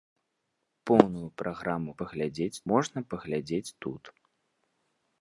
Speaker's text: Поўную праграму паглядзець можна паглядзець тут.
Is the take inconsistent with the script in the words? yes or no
no